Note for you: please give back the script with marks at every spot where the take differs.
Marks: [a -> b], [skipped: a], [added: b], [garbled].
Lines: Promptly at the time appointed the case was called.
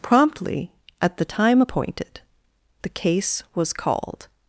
Promptly at the time appointed the case was called.